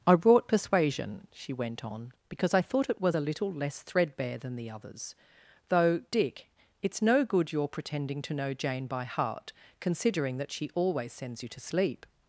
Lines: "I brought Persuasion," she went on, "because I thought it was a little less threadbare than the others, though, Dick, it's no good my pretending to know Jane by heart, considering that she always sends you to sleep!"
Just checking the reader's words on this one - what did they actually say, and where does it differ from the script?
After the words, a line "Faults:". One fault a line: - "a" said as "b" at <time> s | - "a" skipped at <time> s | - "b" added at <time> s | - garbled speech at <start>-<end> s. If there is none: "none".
"I brought Persuasion," she went on, "because I thought it was a little less threadbare than the others, though, Dick, it's no good your pretending to know Jane by heart, considering that she always sends you to sleep!"
Faults:
- "my" said as "your" at 7.5 s